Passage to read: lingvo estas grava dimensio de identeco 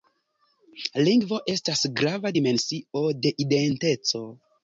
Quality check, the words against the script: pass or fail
pass